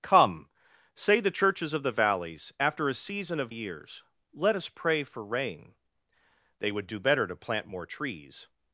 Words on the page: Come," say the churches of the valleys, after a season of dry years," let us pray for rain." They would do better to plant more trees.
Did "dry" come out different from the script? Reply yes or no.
yes